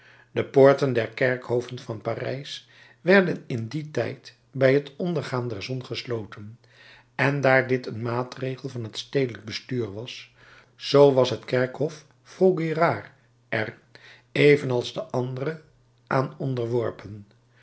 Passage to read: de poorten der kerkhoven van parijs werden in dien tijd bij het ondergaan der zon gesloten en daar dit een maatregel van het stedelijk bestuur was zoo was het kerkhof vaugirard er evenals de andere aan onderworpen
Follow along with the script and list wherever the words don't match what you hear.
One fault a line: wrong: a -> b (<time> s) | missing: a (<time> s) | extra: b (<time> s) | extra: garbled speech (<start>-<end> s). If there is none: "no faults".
no faults